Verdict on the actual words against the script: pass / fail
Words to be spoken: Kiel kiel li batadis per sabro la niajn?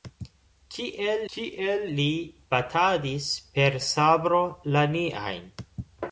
pass